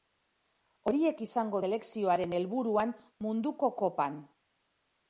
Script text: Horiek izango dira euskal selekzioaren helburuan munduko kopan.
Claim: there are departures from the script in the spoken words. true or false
true